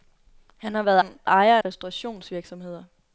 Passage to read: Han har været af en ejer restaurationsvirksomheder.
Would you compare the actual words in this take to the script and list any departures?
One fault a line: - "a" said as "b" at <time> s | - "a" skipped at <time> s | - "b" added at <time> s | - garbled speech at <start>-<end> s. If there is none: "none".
none